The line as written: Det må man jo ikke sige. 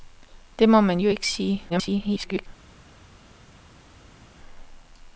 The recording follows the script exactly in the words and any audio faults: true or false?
false